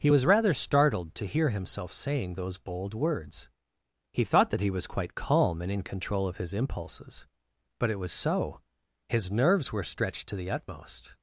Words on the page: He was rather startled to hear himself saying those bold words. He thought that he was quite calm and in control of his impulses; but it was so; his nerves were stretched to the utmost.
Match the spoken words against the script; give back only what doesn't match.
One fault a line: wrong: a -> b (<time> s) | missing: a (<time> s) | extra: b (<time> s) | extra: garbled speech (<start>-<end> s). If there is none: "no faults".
no faults